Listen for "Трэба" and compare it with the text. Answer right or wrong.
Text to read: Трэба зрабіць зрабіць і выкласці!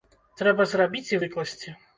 right